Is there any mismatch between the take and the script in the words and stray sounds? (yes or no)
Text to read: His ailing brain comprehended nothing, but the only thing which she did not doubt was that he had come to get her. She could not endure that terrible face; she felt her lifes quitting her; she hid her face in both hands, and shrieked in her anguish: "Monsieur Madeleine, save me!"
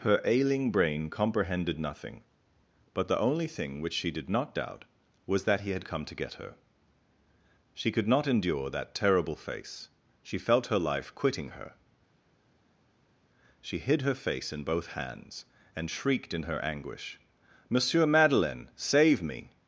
yes